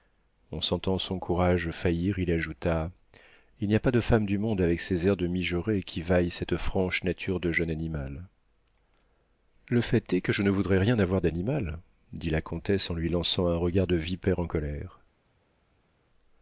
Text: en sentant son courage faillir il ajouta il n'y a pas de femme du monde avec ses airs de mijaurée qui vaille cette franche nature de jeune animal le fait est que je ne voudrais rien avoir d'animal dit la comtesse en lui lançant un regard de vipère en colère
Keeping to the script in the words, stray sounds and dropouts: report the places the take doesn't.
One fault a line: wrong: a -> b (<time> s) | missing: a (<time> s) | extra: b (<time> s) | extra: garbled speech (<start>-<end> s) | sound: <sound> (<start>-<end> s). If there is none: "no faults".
no faults